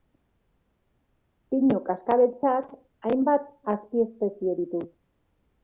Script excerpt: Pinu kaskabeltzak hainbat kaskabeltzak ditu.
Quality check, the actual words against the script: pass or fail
fail